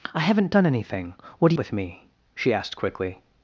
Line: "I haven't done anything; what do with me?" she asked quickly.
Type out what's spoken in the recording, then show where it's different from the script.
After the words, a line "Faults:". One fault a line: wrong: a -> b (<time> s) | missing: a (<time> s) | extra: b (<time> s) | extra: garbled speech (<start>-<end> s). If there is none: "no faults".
"I haven't done anything; what do with me?" she asked quickly.
Faults:
no faults